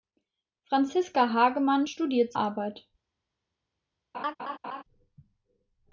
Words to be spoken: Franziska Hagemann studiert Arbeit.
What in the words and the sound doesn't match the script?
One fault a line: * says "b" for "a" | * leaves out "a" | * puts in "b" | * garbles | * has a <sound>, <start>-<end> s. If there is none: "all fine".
* has a laugh, 4.1-4.8 s